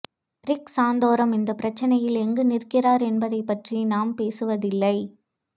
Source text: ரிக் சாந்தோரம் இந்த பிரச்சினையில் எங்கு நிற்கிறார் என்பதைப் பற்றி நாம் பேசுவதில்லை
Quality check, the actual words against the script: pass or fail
pass